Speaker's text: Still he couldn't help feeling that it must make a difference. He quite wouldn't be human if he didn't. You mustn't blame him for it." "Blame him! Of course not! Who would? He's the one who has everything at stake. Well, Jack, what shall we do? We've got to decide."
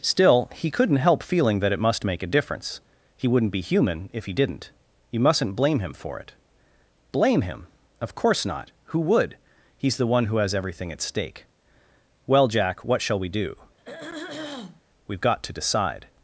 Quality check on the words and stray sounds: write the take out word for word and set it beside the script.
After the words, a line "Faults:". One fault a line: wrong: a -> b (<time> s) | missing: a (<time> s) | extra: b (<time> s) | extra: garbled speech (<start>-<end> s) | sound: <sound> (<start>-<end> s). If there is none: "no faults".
Still he couldn't help feeling that it must make a difference. He wouldn't be human if he didn't. You mustn't blame him for it." "Blame him! Of course not! Who would? He's the one who has everything at stake. Well, Jack, what shall we do? We've got to decide."
Faults:
missing: quite (3.3 s)
sound: throat clearing (13.8-14.8 s)